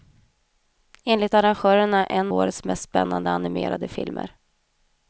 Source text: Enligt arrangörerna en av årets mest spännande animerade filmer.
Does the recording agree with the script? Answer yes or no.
no